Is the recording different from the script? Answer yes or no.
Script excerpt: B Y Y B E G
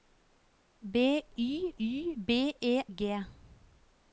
no